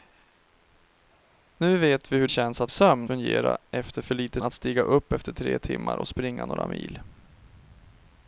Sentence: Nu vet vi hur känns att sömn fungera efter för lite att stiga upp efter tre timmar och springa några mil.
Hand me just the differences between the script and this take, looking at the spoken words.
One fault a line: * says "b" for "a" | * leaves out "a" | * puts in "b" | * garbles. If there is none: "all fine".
all fine